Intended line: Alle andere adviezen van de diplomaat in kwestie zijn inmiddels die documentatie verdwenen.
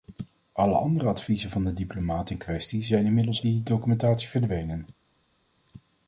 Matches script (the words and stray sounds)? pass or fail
pass